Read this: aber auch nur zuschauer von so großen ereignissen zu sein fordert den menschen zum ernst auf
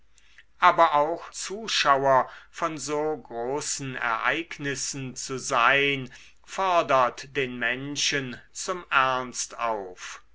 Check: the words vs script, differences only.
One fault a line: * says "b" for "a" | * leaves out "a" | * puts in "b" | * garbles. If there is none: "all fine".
* leaves out "nur"